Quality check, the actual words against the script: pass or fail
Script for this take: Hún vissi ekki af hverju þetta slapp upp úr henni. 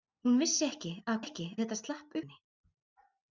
fail